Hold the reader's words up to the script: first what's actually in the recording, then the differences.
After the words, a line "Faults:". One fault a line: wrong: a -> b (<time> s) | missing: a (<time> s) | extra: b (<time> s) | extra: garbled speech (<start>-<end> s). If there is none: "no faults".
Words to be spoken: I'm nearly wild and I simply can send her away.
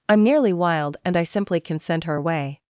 I'm nearly wild and I simply can send her away.
Faults:
no faults